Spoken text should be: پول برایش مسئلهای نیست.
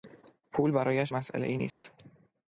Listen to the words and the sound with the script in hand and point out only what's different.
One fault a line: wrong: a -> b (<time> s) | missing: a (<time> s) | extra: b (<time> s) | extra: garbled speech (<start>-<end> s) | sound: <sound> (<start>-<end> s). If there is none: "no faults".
sound: dropout (1.7-1.8 s)